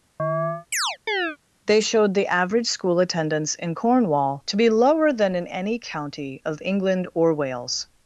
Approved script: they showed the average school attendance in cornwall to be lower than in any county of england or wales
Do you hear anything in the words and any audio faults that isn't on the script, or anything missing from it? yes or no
yes